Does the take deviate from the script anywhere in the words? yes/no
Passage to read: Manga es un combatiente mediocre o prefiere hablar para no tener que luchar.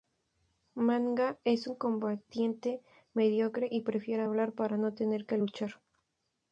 yes